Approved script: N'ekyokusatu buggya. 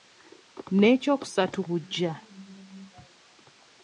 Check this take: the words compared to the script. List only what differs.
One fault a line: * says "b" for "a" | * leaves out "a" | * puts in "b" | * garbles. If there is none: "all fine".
all fine